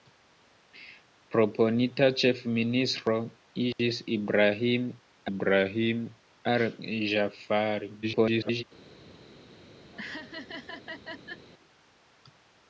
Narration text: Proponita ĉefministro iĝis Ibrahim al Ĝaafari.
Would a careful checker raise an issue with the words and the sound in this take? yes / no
yes